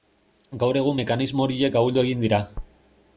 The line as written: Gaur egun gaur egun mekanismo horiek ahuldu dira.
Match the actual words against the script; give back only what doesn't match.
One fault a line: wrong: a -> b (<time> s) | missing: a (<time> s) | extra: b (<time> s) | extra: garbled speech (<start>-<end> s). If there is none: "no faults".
missing: gaur egun (1.0 s)
extra: egin (2.1 s)